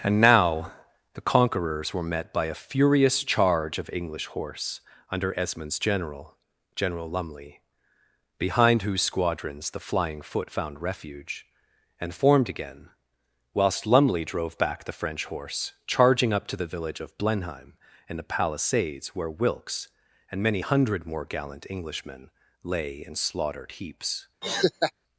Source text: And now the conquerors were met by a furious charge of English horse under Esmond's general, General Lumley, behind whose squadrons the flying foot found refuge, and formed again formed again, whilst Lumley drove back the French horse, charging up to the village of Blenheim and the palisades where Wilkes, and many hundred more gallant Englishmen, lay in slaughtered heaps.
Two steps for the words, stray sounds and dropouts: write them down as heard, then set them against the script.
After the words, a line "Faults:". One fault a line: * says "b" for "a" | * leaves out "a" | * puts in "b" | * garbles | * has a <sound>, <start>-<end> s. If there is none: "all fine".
And now the conquerors were met by a furious charge of English horse under Esmond's general, General Lumley, behind whose squadrons the flying foot found refuge, and formed again, whilst Lumley drove back the French horse, charging up to the village of Blenheim and the palisades where Wilkes, and many hundred more gallant Englishmen, lay in slaughtered heaps.
Faults:
* leaves out "formed again"
* has a laugh, 24.4-24.9 s